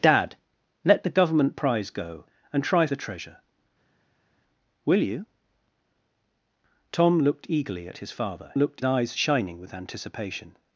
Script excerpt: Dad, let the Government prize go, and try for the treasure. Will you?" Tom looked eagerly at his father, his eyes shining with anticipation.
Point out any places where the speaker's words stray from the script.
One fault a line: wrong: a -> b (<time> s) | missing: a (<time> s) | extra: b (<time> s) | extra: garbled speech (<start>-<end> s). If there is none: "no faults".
missing: for (2.9 s)
wrong: his -> looked (8.5 s)